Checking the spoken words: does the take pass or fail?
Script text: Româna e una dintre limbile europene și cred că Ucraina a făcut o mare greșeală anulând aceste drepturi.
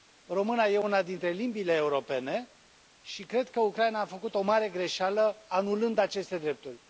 pass